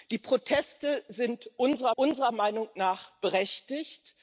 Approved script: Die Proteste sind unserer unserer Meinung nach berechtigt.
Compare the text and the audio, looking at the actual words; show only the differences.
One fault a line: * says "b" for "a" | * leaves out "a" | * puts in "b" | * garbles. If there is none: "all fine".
all fine